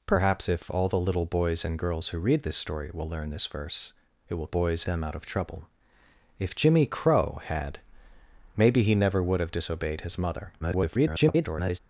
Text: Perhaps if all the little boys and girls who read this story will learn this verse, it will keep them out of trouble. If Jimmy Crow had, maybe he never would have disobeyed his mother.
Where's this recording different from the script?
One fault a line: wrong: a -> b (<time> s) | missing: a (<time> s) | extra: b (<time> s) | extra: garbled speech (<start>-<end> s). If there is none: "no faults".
wrong: keep -> boys (4.5 s)
extra: garbled speech (10.6-11.8 s)